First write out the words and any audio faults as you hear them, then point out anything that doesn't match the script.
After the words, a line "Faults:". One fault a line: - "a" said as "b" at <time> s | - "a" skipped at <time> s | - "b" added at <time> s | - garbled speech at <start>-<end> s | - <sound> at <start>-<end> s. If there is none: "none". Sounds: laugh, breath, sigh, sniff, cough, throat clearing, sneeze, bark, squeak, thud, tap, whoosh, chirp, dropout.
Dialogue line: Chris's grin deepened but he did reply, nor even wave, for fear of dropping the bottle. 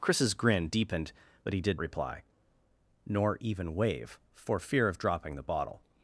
Chris's grin deepened but he did reply, nor even wave, for fear of dropping the bottle.
Faults:
none